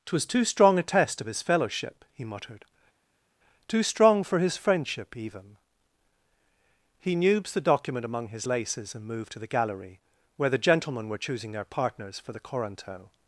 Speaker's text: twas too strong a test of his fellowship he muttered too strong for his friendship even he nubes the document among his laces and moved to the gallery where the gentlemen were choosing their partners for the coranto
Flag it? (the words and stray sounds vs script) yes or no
no